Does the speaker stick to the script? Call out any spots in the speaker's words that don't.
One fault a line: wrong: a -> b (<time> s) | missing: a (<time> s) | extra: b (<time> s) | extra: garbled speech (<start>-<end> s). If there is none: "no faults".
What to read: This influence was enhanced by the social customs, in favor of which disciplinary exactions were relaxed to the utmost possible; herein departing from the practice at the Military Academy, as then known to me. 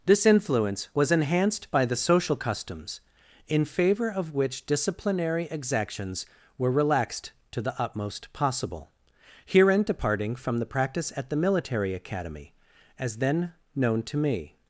no faults